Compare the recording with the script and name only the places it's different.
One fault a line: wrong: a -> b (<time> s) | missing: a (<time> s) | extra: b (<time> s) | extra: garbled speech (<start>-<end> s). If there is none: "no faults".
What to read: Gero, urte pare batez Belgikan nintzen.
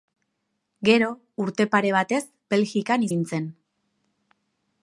no faults